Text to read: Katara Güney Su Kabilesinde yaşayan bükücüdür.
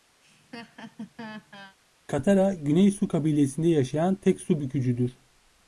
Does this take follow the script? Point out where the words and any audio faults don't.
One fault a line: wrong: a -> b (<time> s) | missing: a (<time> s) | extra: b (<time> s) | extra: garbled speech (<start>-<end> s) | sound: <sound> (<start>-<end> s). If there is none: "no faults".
sound: laugh (0.2-1.8 s)
extra: tek su (4.1 s)